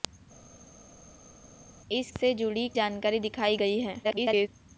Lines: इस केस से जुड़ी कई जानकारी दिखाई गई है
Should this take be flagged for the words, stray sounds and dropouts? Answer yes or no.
yes